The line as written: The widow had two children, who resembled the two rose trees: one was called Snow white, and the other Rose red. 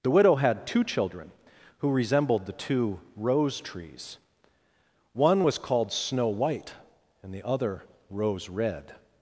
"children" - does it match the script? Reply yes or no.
yes